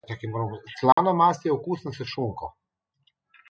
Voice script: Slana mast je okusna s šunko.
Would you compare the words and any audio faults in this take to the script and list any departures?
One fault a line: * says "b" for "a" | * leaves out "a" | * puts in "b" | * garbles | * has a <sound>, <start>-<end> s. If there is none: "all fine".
* has a dropout, 0.9-1.0 s